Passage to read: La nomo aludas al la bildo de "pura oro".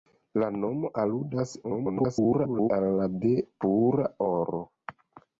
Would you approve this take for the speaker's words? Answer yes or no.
no